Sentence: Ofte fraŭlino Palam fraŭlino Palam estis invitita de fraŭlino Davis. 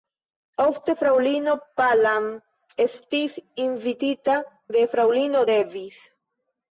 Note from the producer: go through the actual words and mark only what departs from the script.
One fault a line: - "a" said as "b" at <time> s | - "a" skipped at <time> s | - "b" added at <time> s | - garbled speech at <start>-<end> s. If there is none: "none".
- "fraŭlino Palam" skipped at 2.2 s